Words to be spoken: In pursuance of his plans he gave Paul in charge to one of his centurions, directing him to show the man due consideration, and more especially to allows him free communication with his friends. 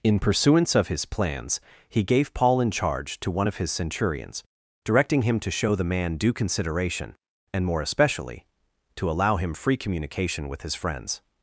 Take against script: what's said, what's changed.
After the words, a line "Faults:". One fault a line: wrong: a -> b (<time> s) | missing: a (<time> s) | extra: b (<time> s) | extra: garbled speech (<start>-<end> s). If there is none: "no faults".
In pursuance of his plans he gave Paul in charge to one of his centurions, directing him to show the man due consideration, and more especially to allow him free communication with his friends.
Faults:
wrong: allows -> allow (9.1 s)